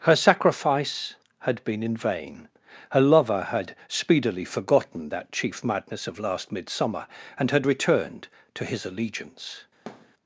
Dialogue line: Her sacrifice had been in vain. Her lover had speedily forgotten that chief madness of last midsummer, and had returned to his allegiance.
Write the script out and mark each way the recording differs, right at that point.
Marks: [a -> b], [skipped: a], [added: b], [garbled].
Her sacrifice had been in vain. Her lover had speedily forgotten that chief madness of last midsummer, and had returned to his allegiance.